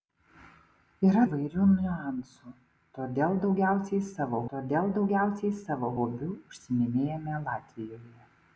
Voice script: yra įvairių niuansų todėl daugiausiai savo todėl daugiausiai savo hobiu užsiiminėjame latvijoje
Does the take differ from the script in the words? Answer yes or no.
no